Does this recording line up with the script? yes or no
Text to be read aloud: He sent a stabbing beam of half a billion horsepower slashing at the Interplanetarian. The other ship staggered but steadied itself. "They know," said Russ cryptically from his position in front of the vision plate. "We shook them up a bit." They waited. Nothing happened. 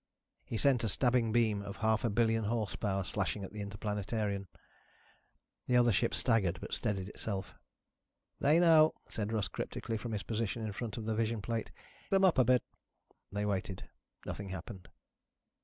no